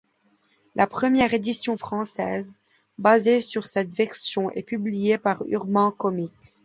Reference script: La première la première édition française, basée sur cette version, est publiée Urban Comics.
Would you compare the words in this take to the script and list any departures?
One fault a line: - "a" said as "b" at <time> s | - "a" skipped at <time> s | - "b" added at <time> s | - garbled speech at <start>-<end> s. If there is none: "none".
- "la première" skipped at 1.3 s
- "par" added at 5.2 s